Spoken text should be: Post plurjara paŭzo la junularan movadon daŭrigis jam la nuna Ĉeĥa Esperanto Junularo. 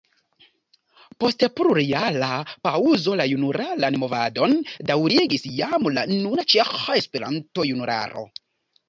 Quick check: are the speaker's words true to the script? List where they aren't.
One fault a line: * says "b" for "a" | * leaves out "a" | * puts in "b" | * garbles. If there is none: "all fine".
all fine